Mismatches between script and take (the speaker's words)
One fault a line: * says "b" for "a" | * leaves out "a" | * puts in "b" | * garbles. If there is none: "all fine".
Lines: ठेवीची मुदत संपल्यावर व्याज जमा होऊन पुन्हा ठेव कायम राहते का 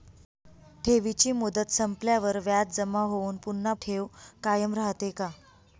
all fine